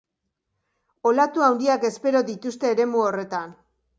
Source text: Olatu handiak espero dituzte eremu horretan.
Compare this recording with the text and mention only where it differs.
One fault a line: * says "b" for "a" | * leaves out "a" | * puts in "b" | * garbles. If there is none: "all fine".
all fine